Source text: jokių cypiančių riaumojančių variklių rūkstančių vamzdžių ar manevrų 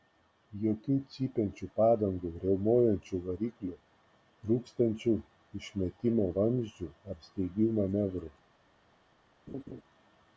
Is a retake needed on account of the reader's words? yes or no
yes